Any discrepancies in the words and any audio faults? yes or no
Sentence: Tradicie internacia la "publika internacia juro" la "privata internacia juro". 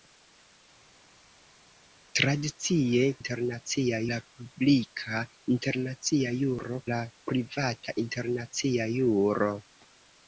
no